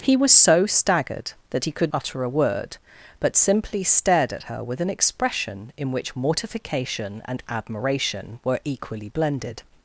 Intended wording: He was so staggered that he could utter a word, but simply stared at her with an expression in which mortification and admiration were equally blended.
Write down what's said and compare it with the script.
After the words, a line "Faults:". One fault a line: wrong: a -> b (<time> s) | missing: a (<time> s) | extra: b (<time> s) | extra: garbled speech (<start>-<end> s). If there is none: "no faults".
He was so staggered that he could utter a word, but simply stared at her with an expression in which mortification and admiration were equally blended.
Faults:
no faults